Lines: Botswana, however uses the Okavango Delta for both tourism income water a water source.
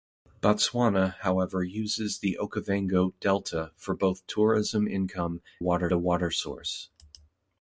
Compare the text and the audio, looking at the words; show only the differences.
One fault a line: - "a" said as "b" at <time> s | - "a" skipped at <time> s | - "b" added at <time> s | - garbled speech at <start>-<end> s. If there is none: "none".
none